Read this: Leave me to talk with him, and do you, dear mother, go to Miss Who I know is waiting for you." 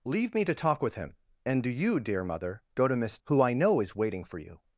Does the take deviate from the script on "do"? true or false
false